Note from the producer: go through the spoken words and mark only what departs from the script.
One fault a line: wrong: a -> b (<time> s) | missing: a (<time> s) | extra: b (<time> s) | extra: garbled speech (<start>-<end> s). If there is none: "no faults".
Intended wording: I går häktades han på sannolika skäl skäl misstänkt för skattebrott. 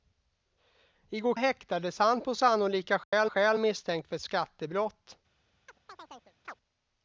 no faults